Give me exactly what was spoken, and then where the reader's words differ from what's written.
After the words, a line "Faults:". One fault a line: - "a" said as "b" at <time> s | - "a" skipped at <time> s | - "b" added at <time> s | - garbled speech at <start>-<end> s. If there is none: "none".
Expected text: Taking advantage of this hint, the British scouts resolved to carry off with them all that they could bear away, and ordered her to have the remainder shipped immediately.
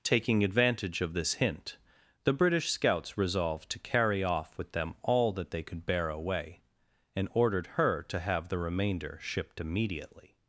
Taking advantage of this hint, the British scouts resolved to carry off with them all that they could bear away, and ordered her to have the remainder shipped immediately.
Faults:
none